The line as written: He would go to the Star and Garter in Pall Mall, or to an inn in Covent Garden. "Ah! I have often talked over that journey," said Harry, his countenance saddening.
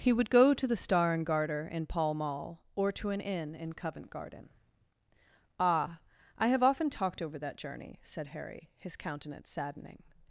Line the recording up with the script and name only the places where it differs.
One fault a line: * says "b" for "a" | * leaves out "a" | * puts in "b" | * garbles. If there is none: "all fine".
all fine